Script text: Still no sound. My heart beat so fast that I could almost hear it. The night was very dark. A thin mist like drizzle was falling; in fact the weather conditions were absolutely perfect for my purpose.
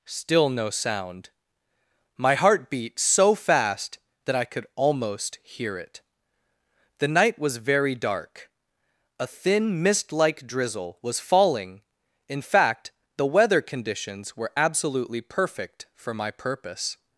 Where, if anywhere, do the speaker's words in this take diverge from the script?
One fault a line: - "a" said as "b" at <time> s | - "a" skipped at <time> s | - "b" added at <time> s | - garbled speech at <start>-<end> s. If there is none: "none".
none